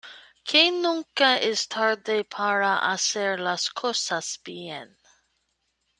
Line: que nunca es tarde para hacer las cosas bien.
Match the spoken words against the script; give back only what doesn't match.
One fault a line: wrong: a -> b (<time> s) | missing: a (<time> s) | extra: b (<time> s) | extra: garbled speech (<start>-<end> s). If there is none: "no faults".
no faults